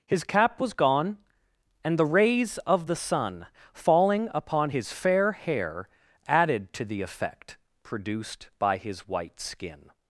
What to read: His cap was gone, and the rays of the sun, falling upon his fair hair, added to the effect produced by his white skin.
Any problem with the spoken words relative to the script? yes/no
no